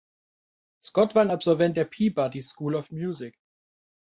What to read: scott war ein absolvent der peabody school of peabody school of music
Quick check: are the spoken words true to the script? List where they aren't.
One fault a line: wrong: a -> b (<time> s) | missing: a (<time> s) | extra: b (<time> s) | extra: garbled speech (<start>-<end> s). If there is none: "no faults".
missing: peabody school of (2.9 s)